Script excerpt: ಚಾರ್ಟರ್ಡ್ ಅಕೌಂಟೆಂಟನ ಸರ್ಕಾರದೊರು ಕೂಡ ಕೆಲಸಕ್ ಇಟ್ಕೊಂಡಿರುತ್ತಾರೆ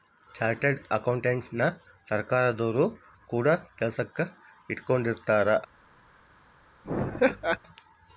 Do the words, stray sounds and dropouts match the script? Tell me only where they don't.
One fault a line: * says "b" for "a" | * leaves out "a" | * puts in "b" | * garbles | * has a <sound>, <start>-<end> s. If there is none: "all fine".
* has a laugh, 6.8-7.6 s